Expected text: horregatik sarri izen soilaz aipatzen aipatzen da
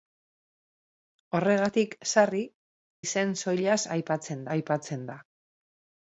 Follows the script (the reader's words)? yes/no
yes